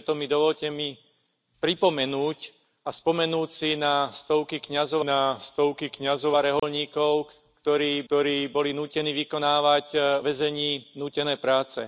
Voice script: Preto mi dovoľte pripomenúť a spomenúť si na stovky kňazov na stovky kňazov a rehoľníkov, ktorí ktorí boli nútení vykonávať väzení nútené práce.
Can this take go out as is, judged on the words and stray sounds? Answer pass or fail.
fail